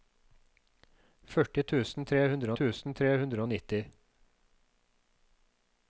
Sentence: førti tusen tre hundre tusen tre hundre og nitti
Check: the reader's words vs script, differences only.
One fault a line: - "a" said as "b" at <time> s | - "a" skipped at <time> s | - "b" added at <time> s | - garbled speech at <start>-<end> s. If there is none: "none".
none